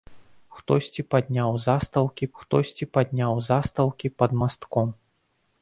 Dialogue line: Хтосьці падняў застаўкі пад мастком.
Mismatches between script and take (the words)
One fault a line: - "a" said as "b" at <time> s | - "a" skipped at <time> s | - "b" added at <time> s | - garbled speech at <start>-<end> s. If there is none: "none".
- "хтосьці падняў застаўкі" added at 2.4 s